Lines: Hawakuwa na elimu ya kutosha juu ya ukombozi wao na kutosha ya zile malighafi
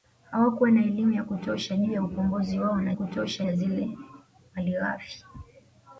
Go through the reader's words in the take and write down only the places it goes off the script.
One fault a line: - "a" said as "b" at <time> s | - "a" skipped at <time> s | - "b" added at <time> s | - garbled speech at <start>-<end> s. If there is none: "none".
none